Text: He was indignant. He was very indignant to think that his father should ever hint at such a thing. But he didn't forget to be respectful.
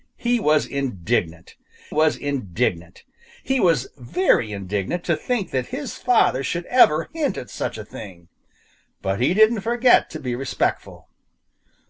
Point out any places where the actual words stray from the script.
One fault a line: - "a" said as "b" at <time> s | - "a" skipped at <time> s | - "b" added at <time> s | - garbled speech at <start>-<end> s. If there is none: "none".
- "was indignant" added at 1.9 s